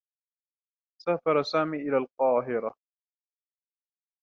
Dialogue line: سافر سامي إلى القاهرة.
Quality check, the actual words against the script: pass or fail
pass